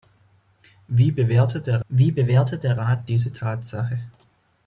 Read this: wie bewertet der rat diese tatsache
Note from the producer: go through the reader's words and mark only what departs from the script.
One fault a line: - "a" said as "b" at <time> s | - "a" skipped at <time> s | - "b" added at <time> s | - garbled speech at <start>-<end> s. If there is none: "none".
- "wie bewertet der" added at 1.9 s